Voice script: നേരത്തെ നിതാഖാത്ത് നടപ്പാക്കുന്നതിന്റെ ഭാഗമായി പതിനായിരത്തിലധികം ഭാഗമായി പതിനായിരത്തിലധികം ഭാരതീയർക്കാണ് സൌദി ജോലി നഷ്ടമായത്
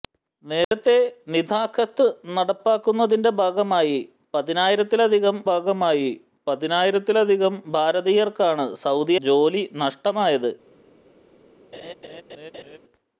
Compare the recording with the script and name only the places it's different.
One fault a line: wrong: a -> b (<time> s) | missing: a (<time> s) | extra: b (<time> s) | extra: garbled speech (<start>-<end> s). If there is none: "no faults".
no faults